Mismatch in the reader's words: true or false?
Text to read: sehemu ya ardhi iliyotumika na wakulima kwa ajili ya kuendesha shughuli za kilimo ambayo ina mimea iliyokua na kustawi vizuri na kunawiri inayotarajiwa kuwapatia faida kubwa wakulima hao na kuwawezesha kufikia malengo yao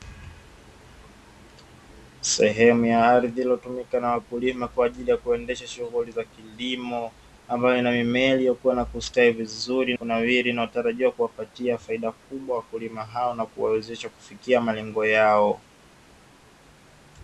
true